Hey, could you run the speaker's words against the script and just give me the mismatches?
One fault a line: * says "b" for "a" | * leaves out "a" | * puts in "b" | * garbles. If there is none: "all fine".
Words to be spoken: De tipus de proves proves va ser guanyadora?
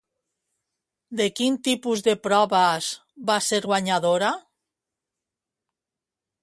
* puts in "quin"
* leaves out "proves"